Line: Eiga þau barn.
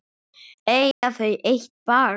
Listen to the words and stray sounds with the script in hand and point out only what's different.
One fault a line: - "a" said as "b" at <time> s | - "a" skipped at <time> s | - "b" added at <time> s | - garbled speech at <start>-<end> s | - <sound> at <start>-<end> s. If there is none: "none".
- dropout at 0.9-1.0 s
- "eitt" added at 1.5 s